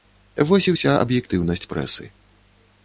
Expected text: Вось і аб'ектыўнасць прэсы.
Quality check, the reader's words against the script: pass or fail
fail